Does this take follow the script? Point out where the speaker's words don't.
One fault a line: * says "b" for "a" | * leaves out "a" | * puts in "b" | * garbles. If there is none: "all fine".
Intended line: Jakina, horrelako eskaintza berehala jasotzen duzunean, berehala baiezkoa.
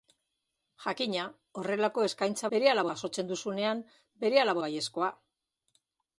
all fine